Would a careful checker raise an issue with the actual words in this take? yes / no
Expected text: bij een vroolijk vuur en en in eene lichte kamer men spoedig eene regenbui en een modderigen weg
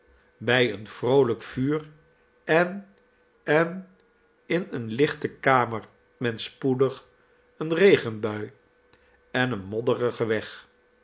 no